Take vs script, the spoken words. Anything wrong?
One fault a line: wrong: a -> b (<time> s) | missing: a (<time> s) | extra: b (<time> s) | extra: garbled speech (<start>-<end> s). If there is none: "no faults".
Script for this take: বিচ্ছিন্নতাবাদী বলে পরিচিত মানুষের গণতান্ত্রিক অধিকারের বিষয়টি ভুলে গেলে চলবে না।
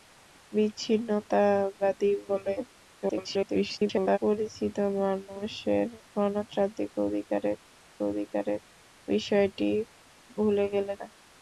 extra: garbled speech (3.0-4.2 s)
extra: অধিকারের (8.1 s)
missing: চলবে (10.9 s)